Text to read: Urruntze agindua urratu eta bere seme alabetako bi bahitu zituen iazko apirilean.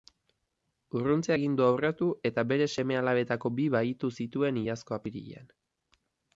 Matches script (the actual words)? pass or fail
pass